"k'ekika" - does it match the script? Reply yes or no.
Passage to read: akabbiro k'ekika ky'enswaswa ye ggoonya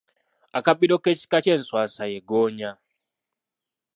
yes